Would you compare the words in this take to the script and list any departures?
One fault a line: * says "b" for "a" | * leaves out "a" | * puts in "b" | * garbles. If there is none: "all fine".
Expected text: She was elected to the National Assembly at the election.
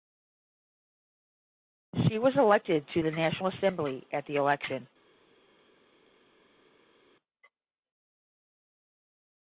all fine